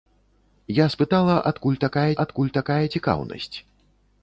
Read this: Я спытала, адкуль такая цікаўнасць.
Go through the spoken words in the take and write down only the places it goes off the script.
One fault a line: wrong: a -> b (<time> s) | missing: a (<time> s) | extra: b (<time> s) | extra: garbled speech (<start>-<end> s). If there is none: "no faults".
extra: адкуль такая (2.2 s)